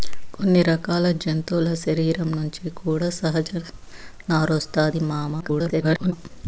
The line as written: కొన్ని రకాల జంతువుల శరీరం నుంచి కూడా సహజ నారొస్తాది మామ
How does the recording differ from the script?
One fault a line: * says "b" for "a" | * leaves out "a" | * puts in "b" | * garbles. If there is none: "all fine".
* garbles